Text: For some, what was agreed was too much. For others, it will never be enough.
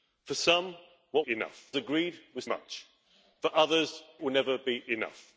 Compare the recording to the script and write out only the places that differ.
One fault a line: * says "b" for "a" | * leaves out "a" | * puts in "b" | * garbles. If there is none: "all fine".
* says "enough" for "was"
* leaves out "too"
* leaves out "it"